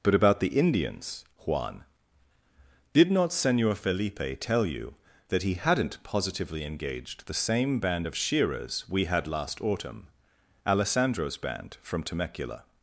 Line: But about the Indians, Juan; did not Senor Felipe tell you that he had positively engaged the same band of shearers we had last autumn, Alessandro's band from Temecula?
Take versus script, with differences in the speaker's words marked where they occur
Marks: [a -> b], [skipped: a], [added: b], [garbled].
But about the Indians, Juan; did not Senor Felipe tell you that he [had -> hadn't] positively engaged the same band of shearers we had last autumn, Alessandro's band from Temecula?